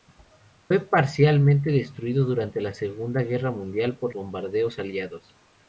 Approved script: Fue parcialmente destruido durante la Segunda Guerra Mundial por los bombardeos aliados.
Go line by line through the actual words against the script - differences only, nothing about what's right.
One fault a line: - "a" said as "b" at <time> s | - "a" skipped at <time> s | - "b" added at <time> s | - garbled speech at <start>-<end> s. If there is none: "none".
- "los" skipped at 4.2 s